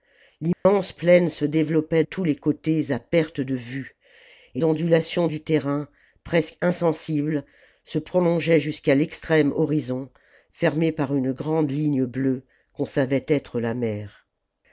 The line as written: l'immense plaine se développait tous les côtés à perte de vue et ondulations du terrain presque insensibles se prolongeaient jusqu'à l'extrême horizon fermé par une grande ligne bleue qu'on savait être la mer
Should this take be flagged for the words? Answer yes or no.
no